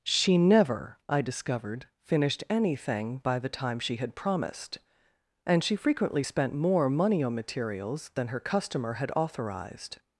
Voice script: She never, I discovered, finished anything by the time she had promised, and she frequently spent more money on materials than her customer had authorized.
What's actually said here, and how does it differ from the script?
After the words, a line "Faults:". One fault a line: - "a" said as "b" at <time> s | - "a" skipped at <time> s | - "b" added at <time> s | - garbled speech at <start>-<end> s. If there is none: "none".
She never, I discovered, finished anything by the time she had promised, and she frequently spent more money on materials than her customer had authorized.
Faults:
none